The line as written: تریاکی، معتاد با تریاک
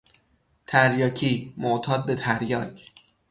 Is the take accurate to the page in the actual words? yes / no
no